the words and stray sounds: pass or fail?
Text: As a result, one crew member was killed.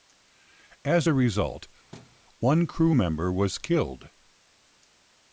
fail